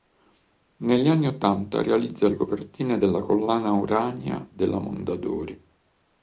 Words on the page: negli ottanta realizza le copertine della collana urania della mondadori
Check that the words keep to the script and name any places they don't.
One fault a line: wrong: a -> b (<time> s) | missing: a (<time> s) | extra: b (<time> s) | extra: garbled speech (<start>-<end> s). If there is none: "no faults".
extra: anni (1.1 s)